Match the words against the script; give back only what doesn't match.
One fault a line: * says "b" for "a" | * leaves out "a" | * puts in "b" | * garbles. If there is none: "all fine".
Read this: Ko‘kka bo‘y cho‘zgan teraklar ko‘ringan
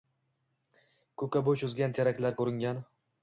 all fine